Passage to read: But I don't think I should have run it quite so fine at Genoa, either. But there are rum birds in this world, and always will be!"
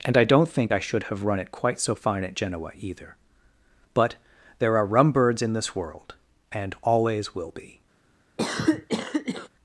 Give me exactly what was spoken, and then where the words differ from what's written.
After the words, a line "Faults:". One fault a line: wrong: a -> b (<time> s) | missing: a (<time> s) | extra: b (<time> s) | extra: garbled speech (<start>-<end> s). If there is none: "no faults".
And I don't think I should have run it quite so fine at Genoa, either. But there are rum birds in this world, and always will be!"
Faults:
wrong: But -> And (0.0 s)